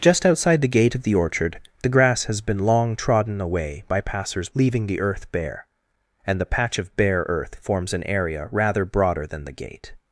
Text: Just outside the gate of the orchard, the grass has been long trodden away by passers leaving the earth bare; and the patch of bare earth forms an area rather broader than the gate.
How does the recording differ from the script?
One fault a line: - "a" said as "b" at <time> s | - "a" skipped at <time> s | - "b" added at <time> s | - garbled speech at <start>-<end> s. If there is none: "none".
none